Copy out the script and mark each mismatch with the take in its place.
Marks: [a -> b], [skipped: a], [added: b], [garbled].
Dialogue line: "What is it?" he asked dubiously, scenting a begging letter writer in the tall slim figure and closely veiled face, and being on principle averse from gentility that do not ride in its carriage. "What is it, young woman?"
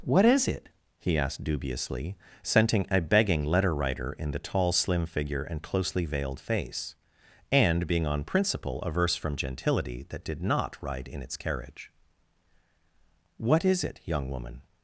"What is it?" he asked dubiously, scenting a begging letter writer in the tall slim figure and closely veiled face, and being on principle averse from gentility that [do -> did] not ride in its carriage. "What is it, young woman?"